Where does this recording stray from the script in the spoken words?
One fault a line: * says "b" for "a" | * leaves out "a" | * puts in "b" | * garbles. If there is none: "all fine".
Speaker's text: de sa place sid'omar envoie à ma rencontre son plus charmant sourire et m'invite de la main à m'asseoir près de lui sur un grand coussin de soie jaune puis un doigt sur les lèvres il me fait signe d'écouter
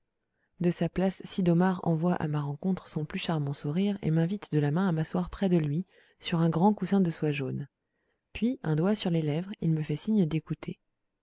all fine